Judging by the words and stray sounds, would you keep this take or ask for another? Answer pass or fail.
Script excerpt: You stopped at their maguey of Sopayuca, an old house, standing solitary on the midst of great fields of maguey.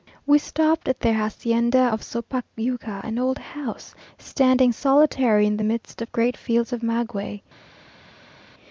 fail